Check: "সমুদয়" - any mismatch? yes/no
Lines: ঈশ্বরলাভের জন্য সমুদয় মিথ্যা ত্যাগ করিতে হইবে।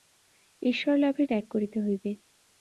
yes